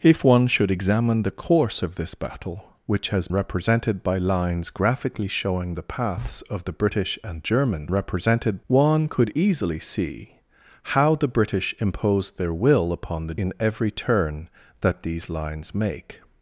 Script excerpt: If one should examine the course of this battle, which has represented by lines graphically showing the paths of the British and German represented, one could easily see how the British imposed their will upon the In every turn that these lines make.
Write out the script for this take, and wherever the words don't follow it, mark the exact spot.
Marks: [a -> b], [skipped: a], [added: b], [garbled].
If one should examine the course of this battle, which has represented by lines graphically showing the paths of the British and German represented, one could easily see how the British imposed their will upon the In every turn that these lines make.